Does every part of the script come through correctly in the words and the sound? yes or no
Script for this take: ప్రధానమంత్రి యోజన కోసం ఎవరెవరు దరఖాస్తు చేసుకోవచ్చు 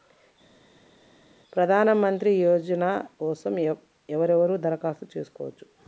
yes